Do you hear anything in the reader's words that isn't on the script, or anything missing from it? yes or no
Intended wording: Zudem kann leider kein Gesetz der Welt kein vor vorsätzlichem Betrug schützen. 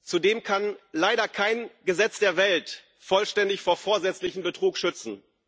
yes